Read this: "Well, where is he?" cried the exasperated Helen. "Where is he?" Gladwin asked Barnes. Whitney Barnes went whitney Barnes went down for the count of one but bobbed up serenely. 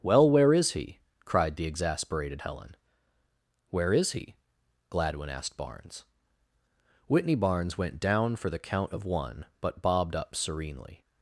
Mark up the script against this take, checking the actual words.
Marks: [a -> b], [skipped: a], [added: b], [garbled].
"Well, where is he?" cried the exasperated Helen. "Where is he?" Gladwin asked Barnes. Whitney Barnes went [skipped: whitney Barnes went] down for the count of one but bobbed up serenely.